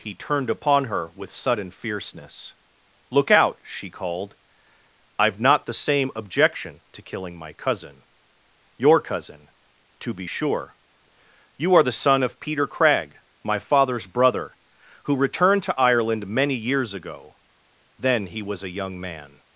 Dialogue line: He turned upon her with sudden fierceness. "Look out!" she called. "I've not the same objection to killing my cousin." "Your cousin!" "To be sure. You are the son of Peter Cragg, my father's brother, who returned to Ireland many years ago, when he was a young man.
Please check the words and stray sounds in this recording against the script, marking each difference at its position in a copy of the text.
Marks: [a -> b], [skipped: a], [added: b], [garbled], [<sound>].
He turned upon her with sudden fierceness. "Look out!" she called. "I've not the same objection to killing my cousin." "Your cousin!" "To be sure. You are the son of Peter Cragg, my father's brother, who returned to Ireland many years ago, [when -> then] he was a young man.